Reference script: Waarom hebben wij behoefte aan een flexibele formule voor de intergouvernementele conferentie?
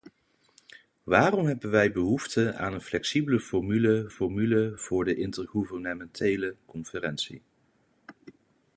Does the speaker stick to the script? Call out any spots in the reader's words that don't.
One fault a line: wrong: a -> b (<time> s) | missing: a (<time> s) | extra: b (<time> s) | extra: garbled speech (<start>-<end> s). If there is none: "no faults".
extra: formule (4.1 s)